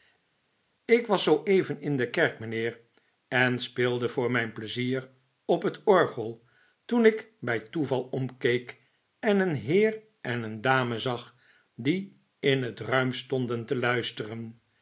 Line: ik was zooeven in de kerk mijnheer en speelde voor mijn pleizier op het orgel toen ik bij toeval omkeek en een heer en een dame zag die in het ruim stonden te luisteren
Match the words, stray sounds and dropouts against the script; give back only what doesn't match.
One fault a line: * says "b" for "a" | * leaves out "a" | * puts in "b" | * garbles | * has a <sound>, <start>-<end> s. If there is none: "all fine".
all fine